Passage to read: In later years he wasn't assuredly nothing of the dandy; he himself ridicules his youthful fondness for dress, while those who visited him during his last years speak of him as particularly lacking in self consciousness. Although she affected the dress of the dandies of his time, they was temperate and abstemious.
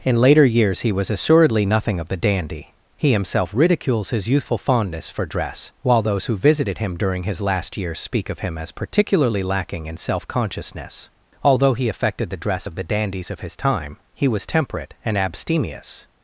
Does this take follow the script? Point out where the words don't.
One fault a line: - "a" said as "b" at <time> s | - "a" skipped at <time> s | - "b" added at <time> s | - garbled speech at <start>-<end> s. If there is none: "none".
- "wasn't" said as "was" at 0.9 s
- "she" said as "he" at 11.8 s
- "they" said as "he" at 14.1 s